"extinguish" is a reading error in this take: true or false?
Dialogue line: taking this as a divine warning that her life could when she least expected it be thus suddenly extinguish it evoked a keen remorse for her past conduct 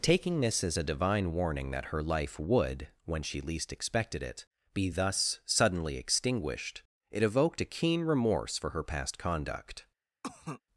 true